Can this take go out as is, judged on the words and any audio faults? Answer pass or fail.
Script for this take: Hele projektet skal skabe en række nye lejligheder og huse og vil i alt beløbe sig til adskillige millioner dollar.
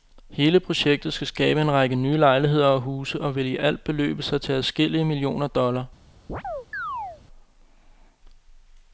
fail